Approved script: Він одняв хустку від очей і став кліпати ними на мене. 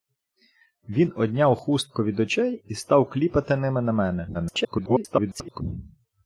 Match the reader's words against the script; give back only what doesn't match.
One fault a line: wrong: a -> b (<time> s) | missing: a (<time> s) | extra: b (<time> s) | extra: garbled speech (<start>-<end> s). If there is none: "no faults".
extra: garbled speech (4.3-5.6 s)